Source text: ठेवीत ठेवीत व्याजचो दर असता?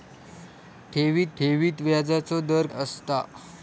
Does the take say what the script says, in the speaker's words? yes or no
yes